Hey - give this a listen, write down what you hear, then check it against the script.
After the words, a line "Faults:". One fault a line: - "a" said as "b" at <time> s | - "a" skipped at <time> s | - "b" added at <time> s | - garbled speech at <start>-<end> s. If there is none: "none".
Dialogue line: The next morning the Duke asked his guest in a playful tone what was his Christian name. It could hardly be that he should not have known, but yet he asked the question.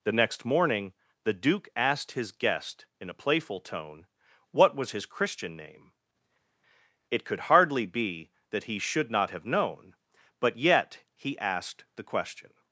The next morning the Duke asked his guest in a playful tone what was his Christian name. It could hardly be that he should not have known, but yet he asked the question.
Faults:
none